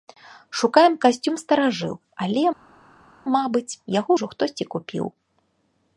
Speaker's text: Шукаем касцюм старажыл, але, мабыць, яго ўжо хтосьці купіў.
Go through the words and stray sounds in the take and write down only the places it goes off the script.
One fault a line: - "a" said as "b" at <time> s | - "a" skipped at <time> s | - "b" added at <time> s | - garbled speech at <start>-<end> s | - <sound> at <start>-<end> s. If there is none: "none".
none